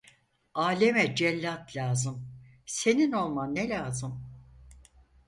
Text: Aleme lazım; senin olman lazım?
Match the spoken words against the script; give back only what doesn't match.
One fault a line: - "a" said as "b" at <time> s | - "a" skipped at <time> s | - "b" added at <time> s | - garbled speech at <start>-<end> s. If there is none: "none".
- "cellat" added at 1.1 s
- "ne" added at 3.5 s